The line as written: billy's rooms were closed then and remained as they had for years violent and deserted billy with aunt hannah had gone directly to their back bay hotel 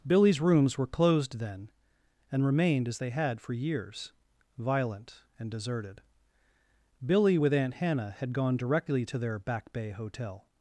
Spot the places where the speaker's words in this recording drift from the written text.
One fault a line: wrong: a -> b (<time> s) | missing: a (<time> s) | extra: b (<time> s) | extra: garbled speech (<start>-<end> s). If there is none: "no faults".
no faults